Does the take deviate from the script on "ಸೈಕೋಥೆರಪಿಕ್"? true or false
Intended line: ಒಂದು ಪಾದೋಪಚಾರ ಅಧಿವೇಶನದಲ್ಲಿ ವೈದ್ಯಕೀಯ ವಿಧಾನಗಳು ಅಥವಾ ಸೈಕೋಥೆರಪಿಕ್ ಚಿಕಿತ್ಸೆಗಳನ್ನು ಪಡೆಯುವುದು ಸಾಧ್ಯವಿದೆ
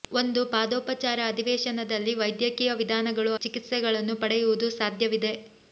true